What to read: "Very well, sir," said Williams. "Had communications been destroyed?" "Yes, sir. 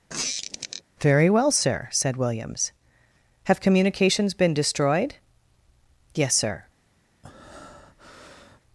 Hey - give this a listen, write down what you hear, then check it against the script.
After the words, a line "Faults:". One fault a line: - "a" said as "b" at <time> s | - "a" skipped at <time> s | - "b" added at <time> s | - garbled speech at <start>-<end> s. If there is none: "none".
"Very well, sir," said Williams. "Have communications been destroyed?" "Yes, sir.
Faults:
- "Had" said as "Have" at 3.4 s